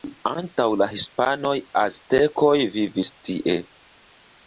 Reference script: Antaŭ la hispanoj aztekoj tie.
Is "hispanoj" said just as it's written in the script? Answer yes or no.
yes